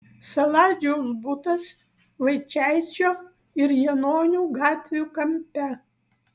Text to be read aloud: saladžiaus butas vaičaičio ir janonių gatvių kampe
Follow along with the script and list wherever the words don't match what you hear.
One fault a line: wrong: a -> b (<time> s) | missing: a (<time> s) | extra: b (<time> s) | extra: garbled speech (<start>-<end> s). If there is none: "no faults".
no faults